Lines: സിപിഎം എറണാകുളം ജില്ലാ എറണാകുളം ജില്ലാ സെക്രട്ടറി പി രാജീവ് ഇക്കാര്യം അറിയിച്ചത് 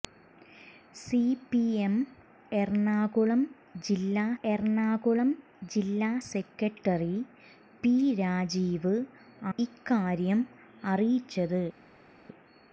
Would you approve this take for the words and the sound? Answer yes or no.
yes